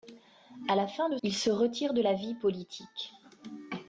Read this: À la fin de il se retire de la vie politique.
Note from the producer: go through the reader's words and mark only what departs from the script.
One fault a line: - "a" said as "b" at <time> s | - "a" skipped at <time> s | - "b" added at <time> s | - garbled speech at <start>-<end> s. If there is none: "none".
none